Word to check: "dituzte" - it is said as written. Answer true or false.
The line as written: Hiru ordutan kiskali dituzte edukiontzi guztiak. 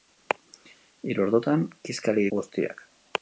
false